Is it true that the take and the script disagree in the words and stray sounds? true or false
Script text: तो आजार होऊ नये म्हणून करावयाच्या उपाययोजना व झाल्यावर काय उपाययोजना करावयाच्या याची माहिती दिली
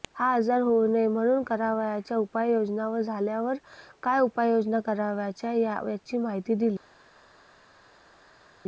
true